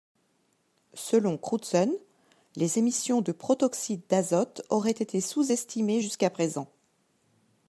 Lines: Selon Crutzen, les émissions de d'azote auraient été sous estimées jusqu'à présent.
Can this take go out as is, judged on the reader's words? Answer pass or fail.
fail